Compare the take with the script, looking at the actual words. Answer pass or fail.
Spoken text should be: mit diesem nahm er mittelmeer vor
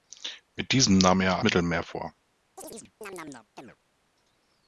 pass